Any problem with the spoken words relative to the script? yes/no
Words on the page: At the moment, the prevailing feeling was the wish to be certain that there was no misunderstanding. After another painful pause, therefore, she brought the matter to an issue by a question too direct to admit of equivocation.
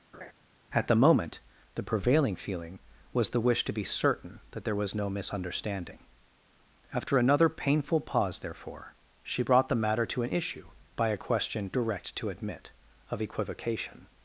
yes